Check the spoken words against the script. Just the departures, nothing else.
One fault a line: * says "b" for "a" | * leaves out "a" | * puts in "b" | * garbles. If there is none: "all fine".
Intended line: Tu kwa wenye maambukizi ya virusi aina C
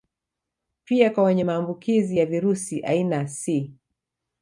* says "Pia" for "Tu"